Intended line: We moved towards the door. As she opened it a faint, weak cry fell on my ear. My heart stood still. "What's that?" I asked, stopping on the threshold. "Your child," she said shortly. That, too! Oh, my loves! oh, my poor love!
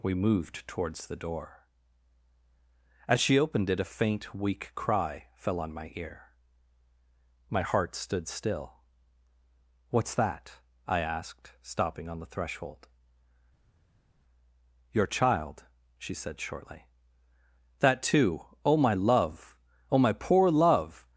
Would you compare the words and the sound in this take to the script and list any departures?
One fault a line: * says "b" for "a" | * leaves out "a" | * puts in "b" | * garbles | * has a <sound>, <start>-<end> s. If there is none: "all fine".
* says "love" for "loves"